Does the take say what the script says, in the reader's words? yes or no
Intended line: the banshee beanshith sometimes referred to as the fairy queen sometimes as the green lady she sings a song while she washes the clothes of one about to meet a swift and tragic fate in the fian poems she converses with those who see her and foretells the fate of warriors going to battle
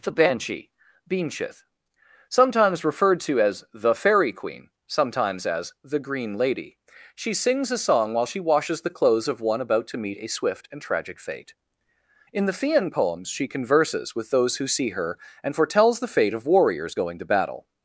yes